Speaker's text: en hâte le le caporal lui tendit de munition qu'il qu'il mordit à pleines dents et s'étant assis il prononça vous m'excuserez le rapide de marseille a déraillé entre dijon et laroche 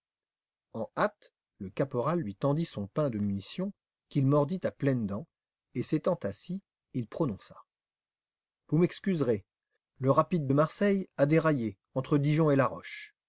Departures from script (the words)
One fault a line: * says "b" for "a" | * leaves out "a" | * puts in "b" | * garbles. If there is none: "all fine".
* leaves out "le"
* puts in "son pain"
* leaves out "qu'il"